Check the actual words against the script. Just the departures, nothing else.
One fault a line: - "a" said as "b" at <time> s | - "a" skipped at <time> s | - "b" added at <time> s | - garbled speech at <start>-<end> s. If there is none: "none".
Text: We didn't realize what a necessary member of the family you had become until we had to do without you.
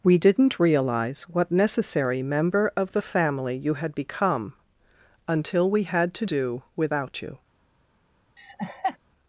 - "a" skipped at 1.5 s